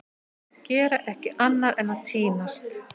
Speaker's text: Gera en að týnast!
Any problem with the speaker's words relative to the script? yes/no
yes